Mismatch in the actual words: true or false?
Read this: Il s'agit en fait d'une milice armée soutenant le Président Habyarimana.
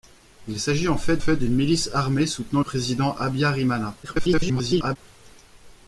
true